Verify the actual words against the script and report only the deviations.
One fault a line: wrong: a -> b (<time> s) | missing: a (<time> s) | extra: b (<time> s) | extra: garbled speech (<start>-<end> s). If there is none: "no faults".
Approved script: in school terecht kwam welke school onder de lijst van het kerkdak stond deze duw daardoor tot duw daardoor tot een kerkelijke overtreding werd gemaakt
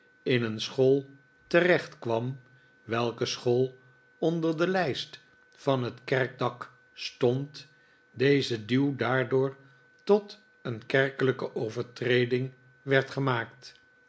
extra: een (0.4 s)
missing: duw daardoor tot (10.4 s)